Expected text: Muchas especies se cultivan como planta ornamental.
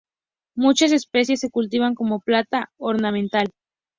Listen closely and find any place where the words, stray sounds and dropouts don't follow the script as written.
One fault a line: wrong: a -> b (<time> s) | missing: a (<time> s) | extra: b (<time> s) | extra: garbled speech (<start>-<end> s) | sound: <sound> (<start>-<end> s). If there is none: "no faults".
no faults